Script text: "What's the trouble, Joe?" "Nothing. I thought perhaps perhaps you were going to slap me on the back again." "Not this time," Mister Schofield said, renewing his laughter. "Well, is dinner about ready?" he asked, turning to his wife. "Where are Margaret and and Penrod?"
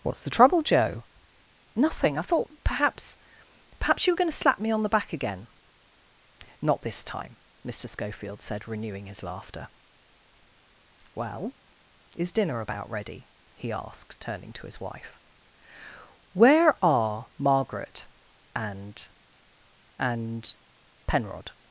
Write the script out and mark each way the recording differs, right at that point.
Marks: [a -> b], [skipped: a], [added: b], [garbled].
"What's the trouble, Joe?" "Nothing. I thought perhaps perhaps you were going to slap me on the back again." "Not this time," Mister Schofield said, renewing his laughter. "Well, is dinner about ready?" he asked, turning to his wife. "Where are Margaret and and Penrod?"